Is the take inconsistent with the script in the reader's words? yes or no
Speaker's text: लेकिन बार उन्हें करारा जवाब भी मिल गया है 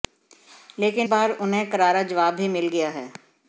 no